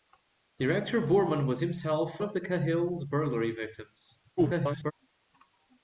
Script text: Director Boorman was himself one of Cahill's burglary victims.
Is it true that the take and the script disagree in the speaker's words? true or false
true